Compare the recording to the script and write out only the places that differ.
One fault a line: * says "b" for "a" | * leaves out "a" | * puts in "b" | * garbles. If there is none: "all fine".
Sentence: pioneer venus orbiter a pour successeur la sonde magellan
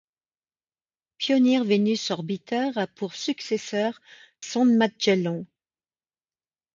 * leaves out "la"